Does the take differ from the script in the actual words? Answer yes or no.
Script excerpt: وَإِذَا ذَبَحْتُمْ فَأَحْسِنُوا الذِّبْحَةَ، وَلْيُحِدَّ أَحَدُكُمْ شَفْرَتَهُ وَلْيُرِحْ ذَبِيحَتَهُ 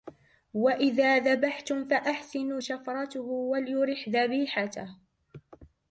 yes